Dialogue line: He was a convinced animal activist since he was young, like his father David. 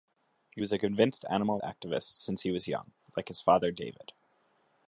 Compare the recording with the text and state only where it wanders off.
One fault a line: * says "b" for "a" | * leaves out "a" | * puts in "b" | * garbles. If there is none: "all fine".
all fine